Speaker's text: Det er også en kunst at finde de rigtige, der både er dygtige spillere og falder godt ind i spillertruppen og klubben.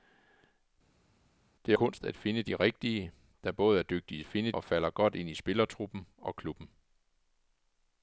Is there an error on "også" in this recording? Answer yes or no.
yes